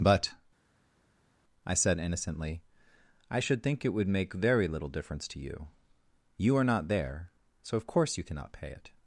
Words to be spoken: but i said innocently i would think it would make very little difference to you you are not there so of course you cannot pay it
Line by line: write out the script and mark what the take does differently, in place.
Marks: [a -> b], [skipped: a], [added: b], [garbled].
but i said innocently i [would -> should] think it would make very little difference to you you are not there so of course you cannot pay it